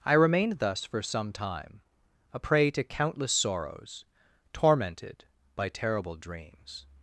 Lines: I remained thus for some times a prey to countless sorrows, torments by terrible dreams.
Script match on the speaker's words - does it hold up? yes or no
no